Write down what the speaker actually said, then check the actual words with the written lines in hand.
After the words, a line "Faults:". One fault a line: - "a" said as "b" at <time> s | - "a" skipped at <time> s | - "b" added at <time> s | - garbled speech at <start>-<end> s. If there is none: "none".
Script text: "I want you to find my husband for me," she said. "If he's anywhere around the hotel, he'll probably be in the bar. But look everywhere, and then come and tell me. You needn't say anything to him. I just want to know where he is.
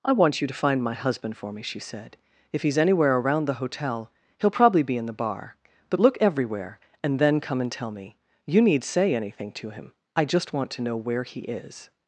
"I want you to find my husband for me," she said. "If he's anywhere around the hotel, he'll probably be in the bar. But look everywhere, and then come and tell me. You need say anything to him. I just want to know where he is.
Faults:
- "needn't" said as "need" at 8.6 s